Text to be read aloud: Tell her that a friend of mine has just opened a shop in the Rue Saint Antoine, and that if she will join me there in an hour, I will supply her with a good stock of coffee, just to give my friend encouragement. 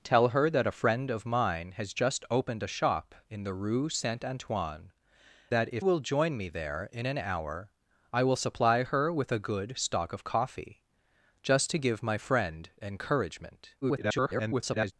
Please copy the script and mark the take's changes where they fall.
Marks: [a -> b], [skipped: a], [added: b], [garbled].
Tell her that a friend of mine has just opened a shop in the Rue Saint Antoine, [skipped: and] that if [skipped: she] will join me there in an hour, I will supply her with a good stock of coffee, just to give my friend encouragement. [garbled]